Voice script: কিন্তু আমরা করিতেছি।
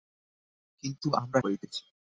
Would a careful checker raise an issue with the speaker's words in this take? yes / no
no